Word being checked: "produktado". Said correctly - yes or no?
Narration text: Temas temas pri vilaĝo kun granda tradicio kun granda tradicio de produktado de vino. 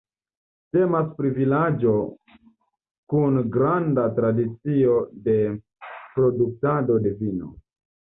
yes